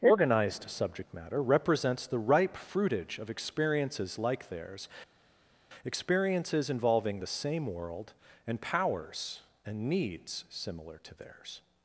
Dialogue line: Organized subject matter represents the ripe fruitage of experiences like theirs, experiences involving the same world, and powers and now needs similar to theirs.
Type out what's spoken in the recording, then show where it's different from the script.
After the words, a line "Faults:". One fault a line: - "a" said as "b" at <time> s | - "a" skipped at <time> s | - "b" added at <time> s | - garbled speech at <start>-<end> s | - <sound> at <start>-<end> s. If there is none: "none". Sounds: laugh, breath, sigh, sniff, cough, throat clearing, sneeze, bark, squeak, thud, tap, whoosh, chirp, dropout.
Organized subject matter represents the ripe fruitage of experiences like theirs, experiences involving the same world, and powers and needs similar to theirs.
Faults:
- "now" skipped at 9.9 s